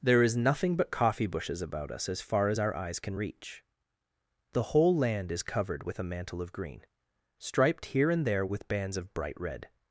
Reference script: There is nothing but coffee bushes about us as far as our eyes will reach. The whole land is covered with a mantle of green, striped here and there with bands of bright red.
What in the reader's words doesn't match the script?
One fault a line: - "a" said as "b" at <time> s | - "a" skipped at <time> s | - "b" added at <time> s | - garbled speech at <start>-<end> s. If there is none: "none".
- "will" said as "can" at 3.0 s